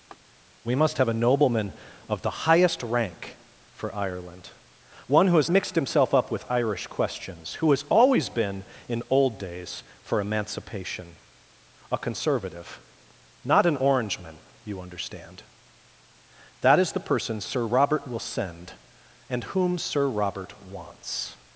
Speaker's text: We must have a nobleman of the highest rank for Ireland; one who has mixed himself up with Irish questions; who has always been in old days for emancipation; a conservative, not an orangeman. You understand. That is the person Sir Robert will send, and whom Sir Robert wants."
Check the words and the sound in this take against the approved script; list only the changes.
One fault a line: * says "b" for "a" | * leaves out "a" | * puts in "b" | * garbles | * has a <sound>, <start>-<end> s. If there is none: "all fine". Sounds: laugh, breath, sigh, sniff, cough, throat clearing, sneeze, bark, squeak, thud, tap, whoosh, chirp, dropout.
* has a laugh, 0.1-0.2 s